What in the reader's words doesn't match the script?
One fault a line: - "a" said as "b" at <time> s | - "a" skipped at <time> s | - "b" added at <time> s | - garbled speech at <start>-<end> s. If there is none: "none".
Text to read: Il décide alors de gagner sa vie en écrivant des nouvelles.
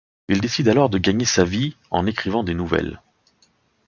none